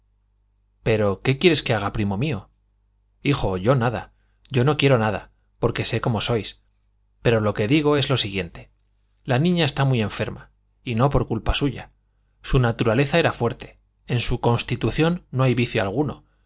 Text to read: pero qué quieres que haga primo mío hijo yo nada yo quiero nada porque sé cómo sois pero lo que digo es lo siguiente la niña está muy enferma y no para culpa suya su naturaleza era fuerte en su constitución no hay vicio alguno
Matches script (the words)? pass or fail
fail